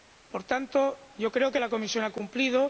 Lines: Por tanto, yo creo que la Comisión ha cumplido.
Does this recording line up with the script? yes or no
yes